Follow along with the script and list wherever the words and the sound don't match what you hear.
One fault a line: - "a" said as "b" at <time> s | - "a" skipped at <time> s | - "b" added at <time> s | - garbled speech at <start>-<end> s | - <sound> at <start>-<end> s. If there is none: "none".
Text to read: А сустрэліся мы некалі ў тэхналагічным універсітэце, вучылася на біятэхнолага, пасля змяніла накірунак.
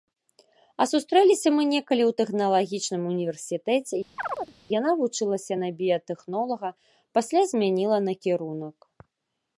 - chirp at 4.2-4.5 s
- "яна" added at 4.8 s